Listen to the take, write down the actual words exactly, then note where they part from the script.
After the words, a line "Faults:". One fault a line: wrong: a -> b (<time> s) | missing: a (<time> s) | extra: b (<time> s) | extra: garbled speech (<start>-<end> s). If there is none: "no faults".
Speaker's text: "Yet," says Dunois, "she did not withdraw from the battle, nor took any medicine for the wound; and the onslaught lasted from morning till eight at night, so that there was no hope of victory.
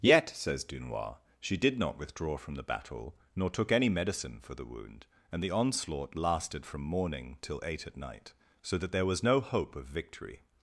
"Yet," says Dunois, "she did not withdraw from the battle, nor took any medicine for the wound; and the onslaught lasted from morning till eight at night, so that there was no hope of victory.
Faults:
no faults